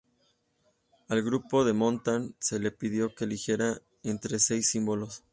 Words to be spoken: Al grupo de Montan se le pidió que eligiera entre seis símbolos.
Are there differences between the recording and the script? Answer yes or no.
no